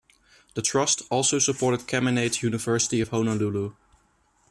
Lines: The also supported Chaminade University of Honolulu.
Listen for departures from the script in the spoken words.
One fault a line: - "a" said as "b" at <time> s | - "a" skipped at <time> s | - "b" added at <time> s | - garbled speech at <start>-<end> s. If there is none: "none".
- "trust" added at 0.6 s